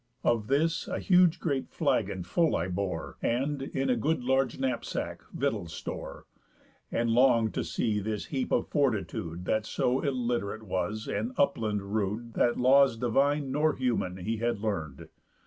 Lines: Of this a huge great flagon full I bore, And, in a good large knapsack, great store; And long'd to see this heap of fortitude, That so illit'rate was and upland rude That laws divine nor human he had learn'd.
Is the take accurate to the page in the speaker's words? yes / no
no